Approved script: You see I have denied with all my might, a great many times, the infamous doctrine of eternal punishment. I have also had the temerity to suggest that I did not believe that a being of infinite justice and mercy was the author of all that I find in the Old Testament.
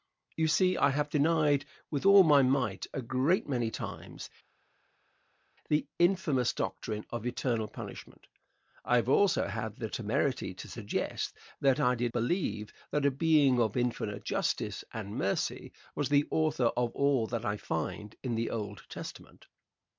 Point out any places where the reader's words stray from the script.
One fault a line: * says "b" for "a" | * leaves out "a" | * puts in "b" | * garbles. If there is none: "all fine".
* leaves out "not"